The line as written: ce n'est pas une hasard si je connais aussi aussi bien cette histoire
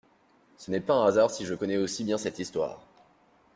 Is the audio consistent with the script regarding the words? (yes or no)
no